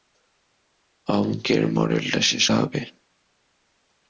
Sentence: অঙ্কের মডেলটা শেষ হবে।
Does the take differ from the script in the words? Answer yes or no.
no